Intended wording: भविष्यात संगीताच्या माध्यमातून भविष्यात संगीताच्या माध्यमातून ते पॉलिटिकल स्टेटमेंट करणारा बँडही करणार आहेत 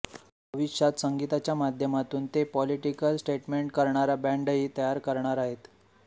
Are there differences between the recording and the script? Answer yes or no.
yes